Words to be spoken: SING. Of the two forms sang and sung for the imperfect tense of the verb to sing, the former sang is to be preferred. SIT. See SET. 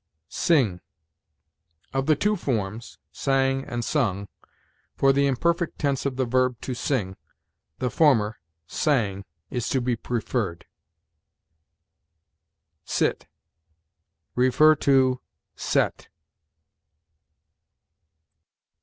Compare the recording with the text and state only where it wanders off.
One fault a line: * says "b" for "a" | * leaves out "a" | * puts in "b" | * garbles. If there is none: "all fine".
all fine